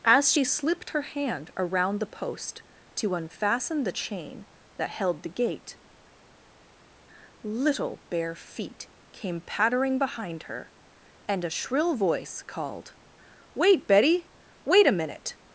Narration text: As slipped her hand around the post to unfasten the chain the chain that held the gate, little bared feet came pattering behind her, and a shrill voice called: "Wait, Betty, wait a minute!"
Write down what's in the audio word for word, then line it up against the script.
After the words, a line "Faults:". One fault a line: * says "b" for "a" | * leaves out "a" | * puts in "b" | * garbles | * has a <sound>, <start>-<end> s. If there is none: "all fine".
As she slipped her hand around the post to unfasten the chain that held the gate, little bare feet came pattering behind her, and a shrill voice called: "Wait, Betty, wait a minute!"
Faults:
* puts in "she"
* leaves out "the chain"
* says "bare" for "bared"